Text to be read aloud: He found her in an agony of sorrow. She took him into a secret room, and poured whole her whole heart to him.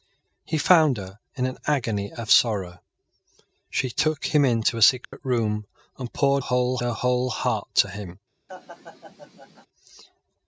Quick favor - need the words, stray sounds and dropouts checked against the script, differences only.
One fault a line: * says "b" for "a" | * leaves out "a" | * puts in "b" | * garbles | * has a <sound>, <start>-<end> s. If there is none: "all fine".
* has a dropout, 5.0-5.1 s
* has a laugh, 8.5-9.7 s